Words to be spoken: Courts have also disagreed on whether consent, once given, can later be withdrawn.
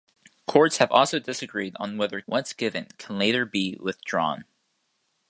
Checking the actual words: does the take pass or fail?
fail